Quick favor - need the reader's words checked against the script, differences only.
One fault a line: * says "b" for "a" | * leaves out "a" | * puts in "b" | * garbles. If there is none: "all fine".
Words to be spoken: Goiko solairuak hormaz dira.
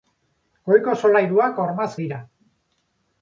all fine